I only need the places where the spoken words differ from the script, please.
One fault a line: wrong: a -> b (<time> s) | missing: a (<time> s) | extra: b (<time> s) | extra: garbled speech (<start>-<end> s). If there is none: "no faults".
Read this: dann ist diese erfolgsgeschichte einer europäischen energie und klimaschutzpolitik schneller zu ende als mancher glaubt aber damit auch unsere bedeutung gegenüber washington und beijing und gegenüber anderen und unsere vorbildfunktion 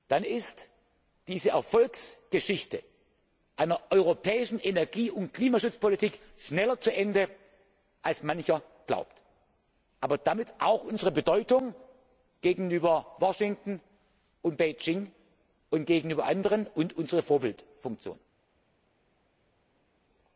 no faults